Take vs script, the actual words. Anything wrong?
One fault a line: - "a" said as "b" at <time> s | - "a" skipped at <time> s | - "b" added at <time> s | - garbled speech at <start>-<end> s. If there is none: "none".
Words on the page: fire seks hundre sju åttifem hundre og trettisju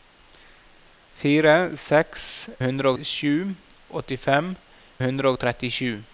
none